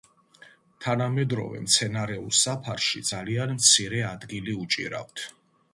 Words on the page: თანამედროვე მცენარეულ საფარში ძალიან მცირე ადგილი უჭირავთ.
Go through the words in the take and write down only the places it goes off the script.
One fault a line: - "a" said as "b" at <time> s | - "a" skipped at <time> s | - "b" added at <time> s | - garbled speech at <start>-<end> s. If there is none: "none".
none